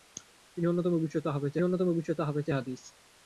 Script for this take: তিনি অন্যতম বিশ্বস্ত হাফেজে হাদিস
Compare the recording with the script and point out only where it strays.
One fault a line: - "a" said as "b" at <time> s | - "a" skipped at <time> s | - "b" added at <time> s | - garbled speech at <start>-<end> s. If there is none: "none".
- "অন্যতম বিশ্বস্ত হাফেজে" added at 1.6 s